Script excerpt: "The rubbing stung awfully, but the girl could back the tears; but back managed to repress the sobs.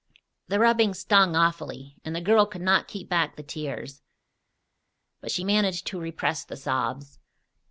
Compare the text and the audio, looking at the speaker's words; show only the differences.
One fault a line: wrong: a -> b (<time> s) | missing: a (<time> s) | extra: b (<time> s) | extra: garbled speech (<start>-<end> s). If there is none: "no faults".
wrong: but -> and (2.0 s)
extra: not keep (2.6 s)
wrong: back -> she (5.3 s)